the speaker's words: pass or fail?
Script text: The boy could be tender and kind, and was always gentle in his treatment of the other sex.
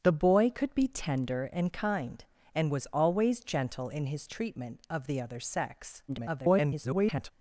fail